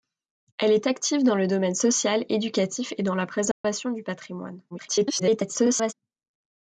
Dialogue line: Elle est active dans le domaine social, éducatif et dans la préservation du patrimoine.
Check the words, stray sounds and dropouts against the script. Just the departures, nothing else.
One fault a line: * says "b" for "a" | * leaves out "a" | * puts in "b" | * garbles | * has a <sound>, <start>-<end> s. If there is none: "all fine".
* has a dropout, 3.5-3.6 s
* garbles